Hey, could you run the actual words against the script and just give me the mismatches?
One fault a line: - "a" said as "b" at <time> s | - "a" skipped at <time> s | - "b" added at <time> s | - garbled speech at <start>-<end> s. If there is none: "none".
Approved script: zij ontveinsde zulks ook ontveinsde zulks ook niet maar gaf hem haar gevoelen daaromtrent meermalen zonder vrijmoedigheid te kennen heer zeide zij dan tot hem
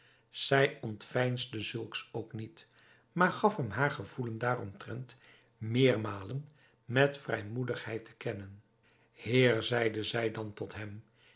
- "ontveinsde zulks ook" skipped at 2.3 s
- "zonder" said as "met" at 6.8 s